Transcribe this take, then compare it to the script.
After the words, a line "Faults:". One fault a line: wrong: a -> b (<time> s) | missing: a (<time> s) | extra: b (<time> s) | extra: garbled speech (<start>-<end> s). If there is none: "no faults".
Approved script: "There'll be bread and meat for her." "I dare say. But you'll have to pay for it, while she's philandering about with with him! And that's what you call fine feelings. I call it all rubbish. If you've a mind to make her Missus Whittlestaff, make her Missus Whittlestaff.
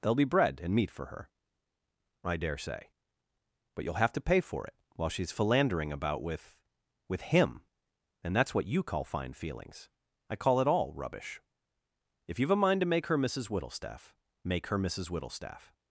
"There'll be bread and meat for her." "I dare say. But you'll have to pay for it, while she's philandering about with with him! And that's what you call fine feelings. I call it all rubbish. If you've a mind to make her Missus Whittlestaff, make her Missus Whittlestaff.
Faults:
no faults